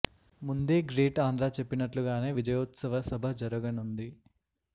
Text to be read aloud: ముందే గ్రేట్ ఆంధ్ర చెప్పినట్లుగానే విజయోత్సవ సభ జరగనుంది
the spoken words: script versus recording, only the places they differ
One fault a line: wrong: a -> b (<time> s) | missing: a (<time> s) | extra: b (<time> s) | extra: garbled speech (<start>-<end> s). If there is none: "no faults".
no faults